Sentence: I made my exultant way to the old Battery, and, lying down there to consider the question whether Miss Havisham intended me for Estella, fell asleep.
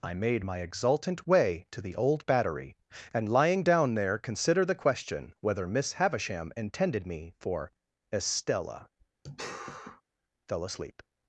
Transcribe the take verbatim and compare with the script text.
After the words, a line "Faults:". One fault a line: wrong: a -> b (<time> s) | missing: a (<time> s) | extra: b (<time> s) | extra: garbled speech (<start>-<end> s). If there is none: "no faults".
I made my exultant way to the old Battery, and, lying down there consider the question whether Miss Havisham intended me for Estella, fell asleep.
Faults:
missing: to (4.2 s)